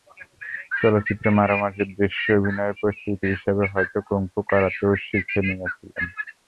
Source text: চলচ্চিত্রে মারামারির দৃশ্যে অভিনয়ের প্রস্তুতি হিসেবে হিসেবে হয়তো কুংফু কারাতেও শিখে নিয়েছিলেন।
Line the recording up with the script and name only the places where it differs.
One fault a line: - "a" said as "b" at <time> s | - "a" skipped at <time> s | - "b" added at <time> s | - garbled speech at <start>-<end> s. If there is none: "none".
- "হিসেবে" skipped at 3.6 s